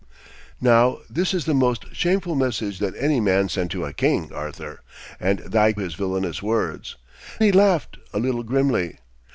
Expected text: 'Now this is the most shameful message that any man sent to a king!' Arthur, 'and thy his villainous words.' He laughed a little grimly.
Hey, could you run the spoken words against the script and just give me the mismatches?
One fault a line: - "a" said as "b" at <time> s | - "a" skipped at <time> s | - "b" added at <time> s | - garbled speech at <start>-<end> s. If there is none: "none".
none